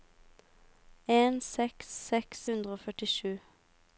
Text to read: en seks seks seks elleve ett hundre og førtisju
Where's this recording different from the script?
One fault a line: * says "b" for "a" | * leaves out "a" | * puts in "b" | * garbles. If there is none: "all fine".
* leaves out "seks elleve ett"